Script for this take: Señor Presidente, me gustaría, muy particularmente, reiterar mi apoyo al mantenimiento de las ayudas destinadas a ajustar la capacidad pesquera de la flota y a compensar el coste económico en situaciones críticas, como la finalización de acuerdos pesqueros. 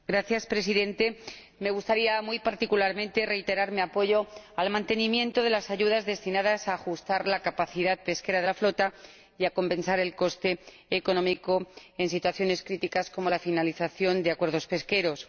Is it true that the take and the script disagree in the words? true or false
false